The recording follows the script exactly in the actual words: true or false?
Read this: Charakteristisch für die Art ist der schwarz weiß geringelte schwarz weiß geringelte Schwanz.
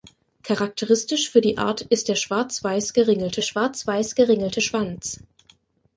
true